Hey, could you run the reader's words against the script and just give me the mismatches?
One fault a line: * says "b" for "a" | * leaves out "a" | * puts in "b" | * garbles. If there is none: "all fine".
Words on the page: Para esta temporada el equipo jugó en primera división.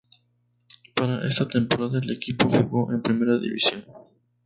all fine